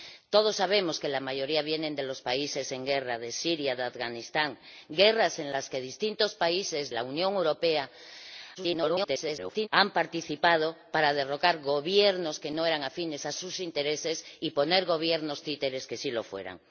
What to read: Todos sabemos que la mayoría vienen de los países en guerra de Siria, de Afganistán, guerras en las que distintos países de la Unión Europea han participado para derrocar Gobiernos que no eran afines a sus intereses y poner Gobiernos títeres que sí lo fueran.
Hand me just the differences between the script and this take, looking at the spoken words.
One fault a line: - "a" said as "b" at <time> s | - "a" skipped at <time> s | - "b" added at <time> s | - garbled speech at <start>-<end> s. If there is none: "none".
- "de" skipped at 6.9 s
- garbled speech at 8.6-9.7 s